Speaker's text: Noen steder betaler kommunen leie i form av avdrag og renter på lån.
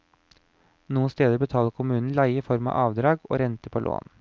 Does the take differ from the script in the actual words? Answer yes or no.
no